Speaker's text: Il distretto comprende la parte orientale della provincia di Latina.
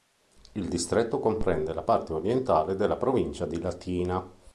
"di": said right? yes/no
yes